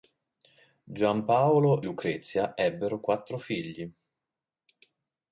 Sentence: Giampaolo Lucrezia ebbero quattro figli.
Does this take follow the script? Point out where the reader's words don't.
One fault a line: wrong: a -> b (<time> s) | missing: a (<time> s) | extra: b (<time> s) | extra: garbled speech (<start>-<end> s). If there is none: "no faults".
no faults